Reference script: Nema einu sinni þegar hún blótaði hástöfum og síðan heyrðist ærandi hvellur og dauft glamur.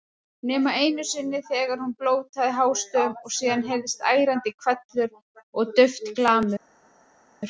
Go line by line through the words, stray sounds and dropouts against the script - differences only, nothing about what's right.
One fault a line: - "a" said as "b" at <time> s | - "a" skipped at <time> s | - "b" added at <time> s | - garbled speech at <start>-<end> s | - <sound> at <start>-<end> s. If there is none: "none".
none